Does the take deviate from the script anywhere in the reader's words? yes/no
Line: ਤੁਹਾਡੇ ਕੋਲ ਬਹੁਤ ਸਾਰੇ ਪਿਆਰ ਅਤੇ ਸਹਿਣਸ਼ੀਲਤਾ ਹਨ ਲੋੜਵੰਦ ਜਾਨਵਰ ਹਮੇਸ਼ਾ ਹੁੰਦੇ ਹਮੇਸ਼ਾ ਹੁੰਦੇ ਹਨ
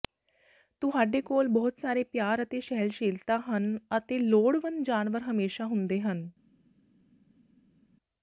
yes